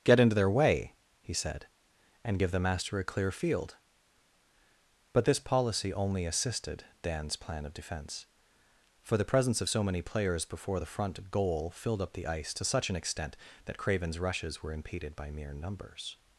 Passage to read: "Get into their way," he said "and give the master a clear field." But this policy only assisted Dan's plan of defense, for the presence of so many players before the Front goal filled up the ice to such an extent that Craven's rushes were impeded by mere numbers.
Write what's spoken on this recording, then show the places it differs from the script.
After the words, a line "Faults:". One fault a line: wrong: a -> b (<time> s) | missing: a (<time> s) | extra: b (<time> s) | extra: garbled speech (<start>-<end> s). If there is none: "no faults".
"Get into their way," he said "and give the master a clear field." But this policy only assisted Dan's plan of defense, for the presence of so many players before the Front goal filled up the ice to such an extent that Craven's rushes were impeded by mere numbers.
Faults:
no faults